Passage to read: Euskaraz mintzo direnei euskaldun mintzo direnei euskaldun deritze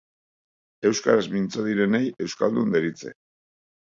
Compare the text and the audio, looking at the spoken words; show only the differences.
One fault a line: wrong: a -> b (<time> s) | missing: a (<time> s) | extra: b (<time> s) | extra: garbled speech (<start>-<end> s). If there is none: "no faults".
missing: mintzo direnei euskaldun (2.8 s)